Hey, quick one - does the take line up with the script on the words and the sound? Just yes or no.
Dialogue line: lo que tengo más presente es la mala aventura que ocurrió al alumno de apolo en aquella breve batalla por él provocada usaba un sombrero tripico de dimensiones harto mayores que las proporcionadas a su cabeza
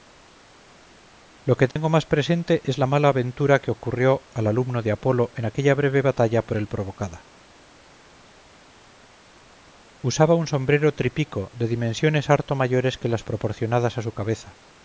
no